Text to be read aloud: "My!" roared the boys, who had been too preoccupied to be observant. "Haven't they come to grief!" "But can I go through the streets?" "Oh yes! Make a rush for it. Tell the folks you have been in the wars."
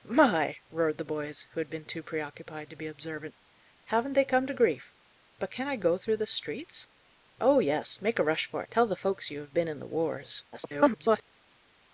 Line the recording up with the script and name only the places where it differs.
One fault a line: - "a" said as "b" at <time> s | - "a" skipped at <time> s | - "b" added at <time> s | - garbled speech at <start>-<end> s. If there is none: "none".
- "it" skipped at 8.6 s
- garbled speech at 10.5-11.2 s